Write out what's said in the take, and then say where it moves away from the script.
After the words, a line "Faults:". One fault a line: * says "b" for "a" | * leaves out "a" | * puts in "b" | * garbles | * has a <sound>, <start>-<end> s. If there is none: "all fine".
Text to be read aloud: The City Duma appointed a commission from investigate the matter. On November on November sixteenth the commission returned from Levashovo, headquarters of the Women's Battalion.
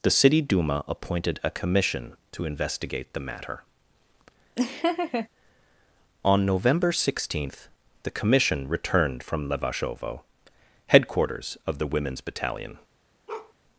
The City Duma appointed a commission to investigate the matter. On November sixteenth the commission returned from Levashovo, headquarters of the Women's Battalion.
Faults:
* says "to" for "from"
* has a laugh, 4.6-5.3 s
* leaves out "on November"
* has a bark, 13.3-13.5 s